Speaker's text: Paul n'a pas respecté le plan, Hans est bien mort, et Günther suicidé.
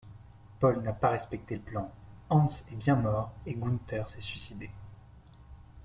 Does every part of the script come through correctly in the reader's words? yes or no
no